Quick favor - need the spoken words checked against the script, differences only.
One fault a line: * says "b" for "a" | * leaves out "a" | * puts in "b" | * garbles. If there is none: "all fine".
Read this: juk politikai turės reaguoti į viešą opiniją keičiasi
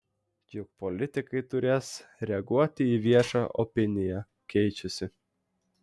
all fine